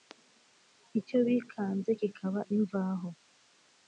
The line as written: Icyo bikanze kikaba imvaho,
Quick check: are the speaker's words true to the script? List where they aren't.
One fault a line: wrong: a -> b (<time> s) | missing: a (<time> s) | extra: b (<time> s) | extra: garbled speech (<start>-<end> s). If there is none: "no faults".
no faults